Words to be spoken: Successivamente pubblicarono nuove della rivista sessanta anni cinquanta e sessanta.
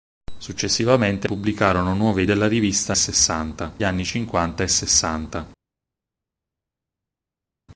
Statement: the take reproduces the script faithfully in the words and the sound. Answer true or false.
true